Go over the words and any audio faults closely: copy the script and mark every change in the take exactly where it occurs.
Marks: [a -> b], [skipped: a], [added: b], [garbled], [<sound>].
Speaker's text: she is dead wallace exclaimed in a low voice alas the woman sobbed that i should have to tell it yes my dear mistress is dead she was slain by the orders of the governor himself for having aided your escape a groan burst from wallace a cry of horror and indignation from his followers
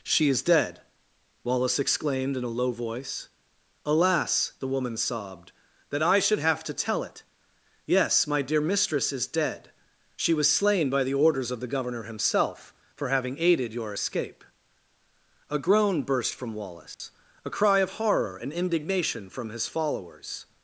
she is dead wallace exclaimed in a low voice alas the woman sobbed that i should have to tell it yes my dear mistress is dead she was slain by the orders of the governor himself for having aided your escape a groan burst from wallace [dropout] a cry of horror and indignation from his followers